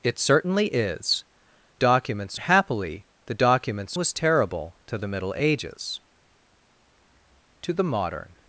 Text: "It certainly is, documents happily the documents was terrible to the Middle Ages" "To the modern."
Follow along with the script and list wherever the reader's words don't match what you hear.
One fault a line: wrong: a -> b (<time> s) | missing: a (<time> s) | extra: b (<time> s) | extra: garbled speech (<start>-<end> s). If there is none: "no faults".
no faults